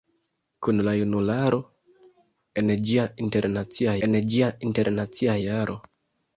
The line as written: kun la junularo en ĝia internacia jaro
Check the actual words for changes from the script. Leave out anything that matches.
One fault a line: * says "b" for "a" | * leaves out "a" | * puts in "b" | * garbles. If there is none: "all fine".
* puts in "en ĝia internacia"